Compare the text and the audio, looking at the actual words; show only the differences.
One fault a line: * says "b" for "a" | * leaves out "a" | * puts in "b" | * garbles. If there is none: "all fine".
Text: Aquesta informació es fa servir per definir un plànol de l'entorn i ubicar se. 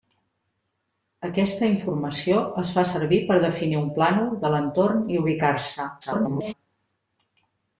* garbles